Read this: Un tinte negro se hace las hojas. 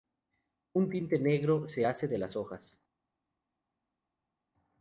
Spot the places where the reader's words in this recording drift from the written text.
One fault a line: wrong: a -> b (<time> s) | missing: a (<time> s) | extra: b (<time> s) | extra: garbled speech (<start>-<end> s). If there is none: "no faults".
extra: de (2.1 s)